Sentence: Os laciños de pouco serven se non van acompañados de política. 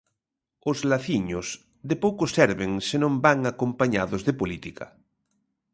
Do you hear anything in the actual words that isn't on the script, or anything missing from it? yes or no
no